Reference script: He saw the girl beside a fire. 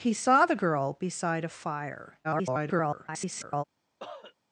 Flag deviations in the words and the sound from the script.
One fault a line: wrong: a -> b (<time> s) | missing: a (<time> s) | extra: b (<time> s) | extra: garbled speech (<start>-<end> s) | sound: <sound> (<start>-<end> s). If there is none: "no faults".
extra: garbled speech (2.2-3.6 s)
sound: cough (4.0-4.3 s)